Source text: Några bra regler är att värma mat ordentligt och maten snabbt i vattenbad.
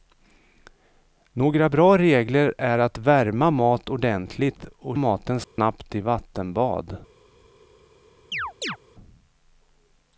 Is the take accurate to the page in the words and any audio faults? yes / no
no